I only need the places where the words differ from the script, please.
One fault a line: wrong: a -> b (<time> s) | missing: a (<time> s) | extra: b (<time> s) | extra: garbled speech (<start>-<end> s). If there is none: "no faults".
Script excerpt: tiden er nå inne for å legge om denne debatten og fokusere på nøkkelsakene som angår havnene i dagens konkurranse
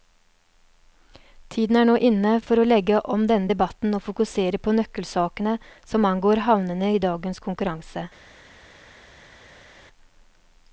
no faults